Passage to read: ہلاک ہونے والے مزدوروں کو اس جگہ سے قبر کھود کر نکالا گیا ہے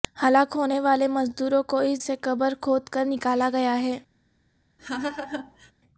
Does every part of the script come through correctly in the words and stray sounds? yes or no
no